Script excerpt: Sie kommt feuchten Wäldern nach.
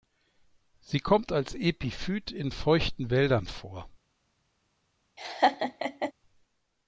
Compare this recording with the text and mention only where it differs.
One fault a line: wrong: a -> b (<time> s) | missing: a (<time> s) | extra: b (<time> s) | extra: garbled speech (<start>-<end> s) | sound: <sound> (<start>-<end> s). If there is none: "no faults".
extra: als Epiphyt in (1.3 s)
wrong: nach -> vor (3.5 s)
sound: laugh (5.2-6.1 s)